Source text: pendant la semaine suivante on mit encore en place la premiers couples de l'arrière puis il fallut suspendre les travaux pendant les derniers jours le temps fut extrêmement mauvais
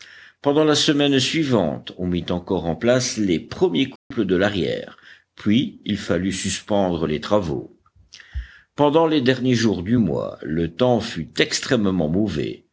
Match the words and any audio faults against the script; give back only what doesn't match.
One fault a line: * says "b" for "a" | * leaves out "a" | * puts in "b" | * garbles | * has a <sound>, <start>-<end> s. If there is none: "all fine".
* says "les" for "la"
* has a dropout, 4.0-4.1 s
* puts in "du mois"